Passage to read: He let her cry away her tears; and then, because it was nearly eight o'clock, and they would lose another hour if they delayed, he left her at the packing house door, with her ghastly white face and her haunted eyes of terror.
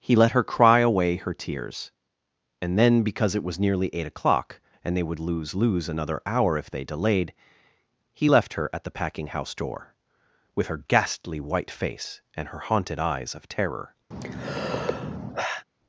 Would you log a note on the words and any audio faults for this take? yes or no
yes